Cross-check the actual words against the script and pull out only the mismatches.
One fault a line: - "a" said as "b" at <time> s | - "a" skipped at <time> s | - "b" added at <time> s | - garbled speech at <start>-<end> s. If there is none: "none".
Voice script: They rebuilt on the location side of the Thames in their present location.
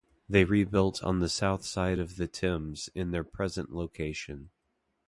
- "location" said as "south" at 1.3 s